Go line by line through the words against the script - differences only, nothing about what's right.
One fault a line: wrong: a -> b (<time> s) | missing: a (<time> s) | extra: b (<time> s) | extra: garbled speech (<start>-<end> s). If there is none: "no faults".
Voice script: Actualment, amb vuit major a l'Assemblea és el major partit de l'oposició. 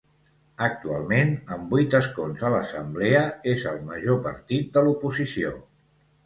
wrong: major -> escons (2.0 s)